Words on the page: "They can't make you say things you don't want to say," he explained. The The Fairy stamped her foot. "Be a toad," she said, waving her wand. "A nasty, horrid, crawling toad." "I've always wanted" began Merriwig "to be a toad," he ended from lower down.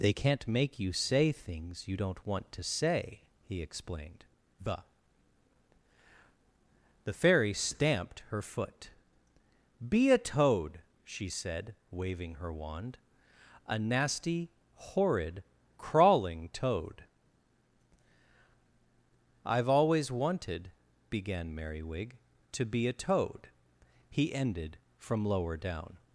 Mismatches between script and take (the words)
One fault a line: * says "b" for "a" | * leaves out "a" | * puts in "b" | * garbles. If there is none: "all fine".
all fine